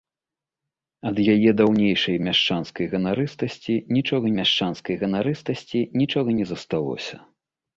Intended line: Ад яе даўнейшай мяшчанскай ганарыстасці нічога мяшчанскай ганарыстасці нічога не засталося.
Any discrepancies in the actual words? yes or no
no